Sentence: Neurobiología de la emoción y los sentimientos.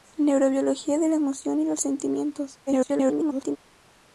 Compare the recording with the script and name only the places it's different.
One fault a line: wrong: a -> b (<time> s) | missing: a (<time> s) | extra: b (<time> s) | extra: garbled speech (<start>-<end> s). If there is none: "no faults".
extra: garbled speech (2.7-3.6 s)